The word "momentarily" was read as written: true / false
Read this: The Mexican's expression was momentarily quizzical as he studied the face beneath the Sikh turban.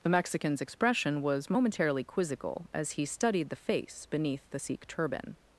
true